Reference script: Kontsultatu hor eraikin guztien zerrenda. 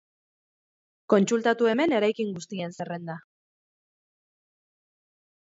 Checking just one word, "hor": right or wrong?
wrong